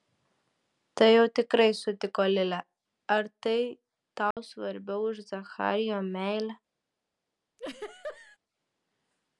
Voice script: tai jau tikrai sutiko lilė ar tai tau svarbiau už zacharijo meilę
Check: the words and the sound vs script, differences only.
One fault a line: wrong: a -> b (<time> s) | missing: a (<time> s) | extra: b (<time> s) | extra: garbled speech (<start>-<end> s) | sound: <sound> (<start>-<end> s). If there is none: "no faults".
sound: dropout (4.3-4.4 s)
sound: laugh (7.6-8.4 s)